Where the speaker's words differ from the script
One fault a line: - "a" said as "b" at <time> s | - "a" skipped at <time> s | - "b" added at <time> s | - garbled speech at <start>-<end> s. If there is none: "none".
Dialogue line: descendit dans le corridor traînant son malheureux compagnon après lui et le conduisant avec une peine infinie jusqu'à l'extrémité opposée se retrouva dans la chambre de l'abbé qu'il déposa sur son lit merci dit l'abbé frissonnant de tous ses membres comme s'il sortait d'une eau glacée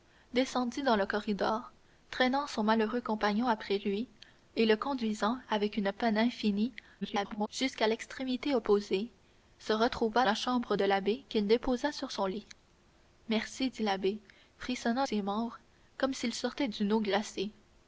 - garbled speech at 7.0-7.5 s
- "dans" skipped at 10.2 s
- "de tous" skipped at 15.1 s